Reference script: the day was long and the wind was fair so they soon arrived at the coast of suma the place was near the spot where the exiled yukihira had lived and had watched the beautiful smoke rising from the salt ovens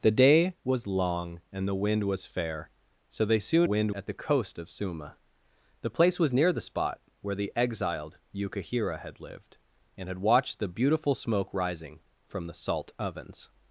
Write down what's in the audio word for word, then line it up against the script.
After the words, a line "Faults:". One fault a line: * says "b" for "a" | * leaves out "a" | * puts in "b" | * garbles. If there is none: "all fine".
the day was long and the wind was fair so they soon wind at the coast of suma the place was near the spot where the exiled yukihira had lived and had watched the beautiful smoke rising from the salt ovens
Faults:
* says "wind" for "arrived"